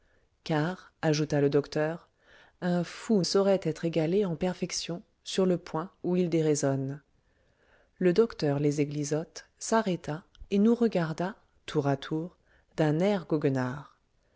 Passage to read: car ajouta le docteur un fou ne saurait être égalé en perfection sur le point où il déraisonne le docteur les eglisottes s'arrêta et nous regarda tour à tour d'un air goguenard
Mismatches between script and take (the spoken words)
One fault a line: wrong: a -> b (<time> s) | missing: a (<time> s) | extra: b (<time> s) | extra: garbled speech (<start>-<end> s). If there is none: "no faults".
missing: ne (3.2 s)